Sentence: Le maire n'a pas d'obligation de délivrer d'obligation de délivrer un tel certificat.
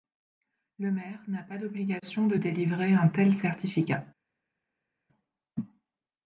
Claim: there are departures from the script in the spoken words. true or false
true